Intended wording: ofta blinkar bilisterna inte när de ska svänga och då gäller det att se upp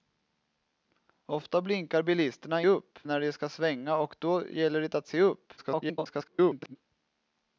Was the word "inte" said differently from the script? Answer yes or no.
yes